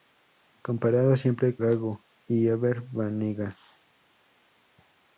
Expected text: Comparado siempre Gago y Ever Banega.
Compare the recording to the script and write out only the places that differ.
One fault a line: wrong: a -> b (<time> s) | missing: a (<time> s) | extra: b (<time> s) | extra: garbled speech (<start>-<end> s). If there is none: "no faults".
no faults